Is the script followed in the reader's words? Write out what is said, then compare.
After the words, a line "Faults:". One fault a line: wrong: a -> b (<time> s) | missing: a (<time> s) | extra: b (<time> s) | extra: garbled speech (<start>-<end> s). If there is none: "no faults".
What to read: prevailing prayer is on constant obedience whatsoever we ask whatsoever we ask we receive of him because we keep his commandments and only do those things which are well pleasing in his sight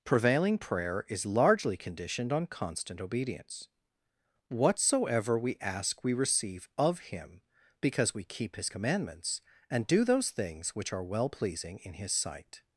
prevailing prayer is largely conditioned on constant obedience whatsoever we ask we receive of him because we keep his commandments and do those things which are well pleasing in his sight
Faults:
extra: largely conditioned (1.2 s)
missing: whatsoever (6.0 s)
missing: ask we (6.1 s)
missing: only (9.9 s)